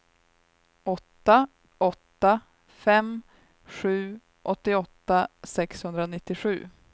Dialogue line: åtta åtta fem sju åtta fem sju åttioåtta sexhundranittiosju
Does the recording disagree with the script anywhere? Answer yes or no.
yes